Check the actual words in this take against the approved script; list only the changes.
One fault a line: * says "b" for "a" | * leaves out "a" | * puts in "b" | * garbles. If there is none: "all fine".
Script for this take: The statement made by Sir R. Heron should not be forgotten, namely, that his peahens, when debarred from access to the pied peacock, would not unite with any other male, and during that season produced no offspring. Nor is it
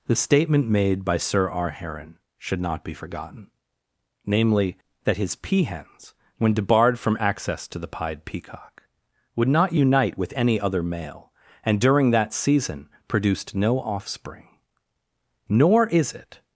all fine